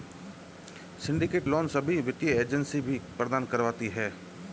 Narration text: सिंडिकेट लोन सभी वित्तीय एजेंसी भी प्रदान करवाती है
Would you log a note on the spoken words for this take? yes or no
no